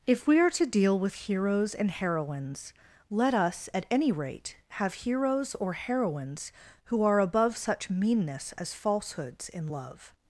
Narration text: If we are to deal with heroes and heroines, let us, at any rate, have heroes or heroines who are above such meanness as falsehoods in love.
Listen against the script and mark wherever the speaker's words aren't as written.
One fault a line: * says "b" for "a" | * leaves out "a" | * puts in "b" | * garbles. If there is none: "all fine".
all fine